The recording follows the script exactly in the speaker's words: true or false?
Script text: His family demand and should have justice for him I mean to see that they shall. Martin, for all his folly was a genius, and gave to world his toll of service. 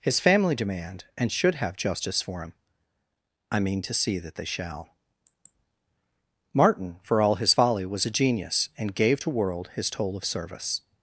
true